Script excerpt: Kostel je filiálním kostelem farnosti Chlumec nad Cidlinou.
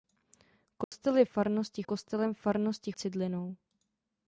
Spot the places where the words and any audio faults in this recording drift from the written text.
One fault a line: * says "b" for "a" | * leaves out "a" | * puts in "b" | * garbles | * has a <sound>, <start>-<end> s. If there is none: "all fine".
* has a dropout, 0.8-0.9 s
* says "farnosti" for "filiálním"
* leaves out "Chlumec nad"